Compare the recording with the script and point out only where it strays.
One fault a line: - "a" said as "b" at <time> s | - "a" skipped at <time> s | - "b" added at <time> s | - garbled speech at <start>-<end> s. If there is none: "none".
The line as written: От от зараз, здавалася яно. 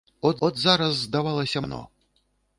none